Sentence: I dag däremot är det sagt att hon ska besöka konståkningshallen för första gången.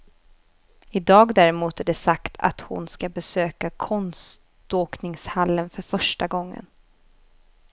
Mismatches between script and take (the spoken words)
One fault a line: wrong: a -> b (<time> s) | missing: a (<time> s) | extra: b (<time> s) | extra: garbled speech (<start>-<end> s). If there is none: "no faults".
no faults